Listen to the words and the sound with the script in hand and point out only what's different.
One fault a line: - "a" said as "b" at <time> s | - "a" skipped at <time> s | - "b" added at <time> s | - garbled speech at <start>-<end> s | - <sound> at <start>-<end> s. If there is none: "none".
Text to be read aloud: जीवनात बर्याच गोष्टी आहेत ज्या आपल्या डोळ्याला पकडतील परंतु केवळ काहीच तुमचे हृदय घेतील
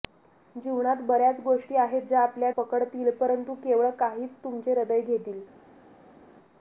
- "डोळ्याला" skipped at 2.5 s